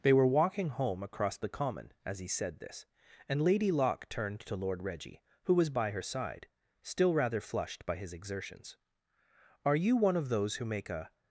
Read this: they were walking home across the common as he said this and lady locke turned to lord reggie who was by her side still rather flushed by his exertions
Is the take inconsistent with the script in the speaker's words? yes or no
yes